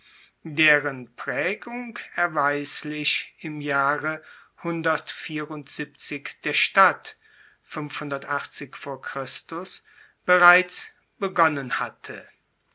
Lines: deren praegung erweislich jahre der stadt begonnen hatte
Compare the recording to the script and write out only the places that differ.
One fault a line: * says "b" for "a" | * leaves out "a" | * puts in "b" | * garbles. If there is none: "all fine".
* puts in "im"
* puts in "bereits"